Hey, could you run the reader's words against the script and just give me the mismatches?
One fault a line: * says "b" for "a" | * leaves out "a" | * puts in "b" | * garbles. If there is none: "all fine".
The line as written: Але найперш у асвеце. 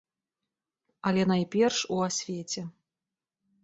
all fine